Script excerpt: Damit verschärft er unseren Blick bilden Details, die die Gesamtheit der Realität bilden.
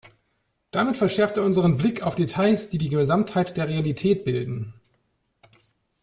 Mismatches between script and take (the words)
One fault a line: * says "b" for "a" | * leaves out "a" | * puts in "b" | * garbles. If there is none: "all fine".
* says "auf" for "bilden"